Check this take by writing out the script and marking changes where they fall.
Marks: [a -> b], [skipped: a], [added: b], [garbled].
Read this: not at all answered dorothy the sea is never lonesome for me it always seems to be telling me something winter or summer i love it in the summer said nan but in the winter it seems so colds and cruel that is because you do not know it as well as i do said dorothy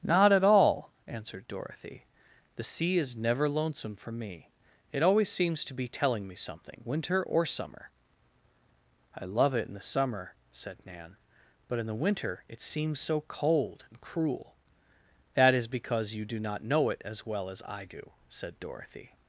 not at all answered dorothy the sea is never lonesome for me it always seems to be telling me something winter or summer i love it in the summer said nan but in the winter it seems so [colds -> cold] and cruel that is because you do not know it as well as i do said dorothy